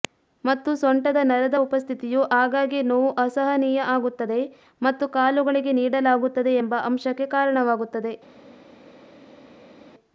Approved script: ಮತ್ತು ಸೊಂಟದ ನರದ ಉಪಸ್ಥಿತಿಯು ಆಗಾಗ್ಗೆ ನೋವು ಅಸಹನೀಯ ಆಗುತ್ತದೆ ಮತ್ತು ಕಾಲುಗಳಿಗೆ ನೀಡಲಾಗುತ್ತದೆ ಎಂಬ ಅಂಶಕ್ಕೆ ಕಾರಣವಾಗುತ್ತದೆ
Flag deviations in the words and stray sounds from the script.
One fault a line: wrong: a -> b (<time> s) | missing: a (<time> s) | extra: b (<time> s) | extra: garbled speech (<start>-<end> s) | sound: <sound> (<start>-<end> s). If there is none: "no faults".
no faults